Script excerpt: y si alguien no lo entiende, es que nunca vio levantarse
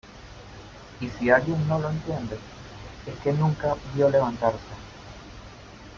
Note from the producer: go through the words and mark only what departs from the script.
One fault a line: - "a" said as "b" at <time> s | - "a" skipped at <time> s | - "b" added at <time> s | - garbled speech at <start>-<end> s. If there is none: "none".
none